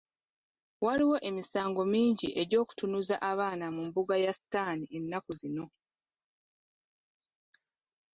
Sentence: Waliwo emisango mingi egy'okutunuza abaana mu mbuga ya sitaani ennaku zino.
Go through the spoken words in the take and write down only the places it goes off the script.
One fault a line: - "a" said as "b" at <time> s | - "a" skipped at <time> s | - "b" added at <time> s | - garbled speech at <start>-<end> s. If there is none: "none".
none